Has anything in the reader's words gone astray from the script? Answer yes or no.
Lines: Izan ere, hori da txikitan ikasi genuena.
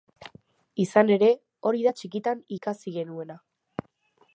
no